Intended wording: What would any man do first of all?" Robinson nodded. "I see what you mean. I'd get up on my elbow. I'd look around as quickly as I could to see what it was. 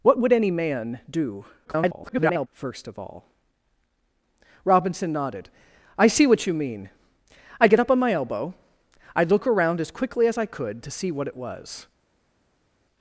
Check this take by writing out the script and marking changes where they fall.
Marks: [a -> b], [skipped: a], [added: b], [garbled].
What would any man do [garbled] first of all?" Robinson nodded. "I see what you mean. I'd get up on my elbow. I'd look around as quickly as I could to see what it was.